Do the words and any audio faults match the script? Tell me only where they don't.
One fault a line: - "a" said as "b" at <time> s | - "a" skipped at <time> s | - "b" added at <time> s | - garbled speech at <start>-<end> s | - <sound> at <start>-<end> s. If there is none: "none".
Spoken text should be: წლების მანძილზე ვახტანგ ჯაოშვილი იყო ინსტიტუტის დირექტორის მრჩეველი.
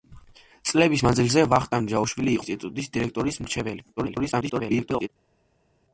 - "იყო" skipped at 2.4 s
- garbled speech at 4.0-5.1 s